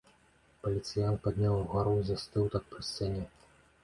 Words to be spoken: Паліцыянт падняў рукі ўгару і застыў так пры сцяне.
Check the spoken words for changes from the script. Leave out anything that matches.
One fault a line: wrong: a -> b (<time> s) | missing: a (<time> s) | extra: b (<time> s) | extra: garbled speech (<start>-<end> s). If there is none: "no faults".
missing: рукі (1.6 s)